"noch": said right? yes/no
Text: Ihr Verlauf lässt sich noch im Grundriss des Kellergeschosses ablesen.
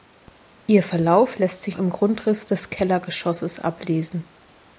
no